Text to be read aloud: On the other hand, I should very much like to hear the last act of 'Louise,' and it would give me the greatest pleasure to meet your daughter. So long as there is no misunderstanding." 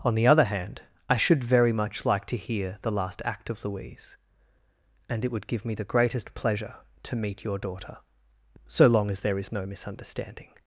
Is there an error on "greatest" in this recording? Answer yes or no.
no